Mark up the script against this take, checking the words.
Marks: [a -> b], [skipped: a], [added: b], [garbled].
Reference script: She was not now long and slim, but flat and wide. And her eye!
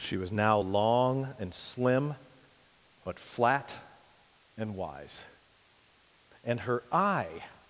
She was [skipped: not] now long and slim, but flat and [wide. -> wise] And her eye!